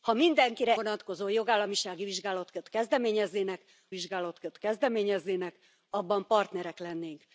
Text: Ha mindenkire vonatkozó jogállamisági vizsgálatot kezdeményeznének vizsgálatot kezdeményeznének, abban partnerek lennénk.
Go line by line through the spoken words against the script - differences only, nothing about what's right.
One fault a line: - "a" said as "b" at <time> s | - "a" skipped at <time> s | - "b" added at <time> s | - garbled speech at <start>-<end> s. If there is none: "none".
none